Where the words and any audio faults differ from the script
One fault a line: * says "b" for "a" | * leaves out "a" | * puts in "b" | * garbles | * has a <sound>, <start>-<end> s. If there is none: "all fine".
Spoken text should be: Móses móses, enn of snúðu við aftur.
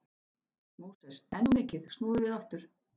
* leaves out "móses"
* puts in "mikið"